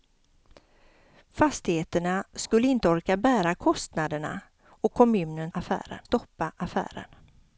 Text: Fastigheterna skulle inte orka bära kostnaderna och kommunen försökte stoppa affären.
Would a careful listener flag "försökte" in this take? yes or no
yes